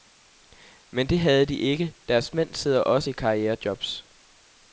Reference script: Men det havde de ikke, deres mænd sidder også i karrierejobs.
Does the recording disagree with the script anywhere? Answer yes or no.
no